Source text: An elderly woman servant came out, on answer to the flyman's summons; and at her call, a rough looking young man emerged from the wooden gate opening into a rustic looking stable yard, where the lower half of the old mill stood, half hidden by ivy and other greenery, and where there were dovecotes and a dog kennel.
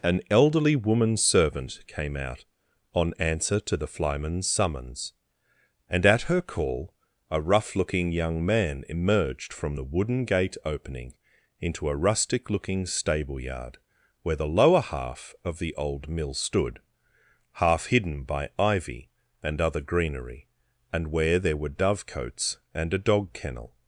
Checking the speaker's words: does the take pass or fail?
pass